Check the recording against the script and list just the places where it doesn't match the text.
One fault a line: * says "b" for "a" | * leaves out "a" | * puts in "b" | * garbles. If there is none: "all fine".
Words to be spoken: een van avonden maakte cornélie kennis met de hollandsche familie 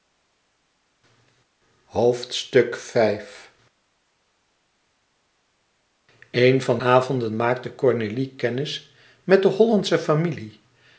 all fine